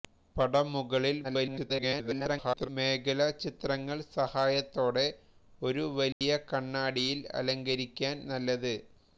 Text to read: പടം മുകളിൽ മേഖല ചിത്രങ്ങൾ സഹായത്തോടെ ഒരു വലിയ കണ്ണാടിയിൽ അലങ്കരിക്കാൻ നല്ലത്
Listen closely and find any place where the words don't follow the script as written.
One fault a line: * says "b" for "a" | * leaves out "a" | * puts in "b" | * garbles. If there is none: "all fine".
* garbles